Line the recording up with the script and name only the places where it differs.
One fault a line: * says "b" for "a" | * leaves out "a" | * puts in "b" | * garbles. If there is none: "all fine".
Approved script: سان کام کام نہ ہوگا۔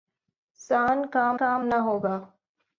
all fine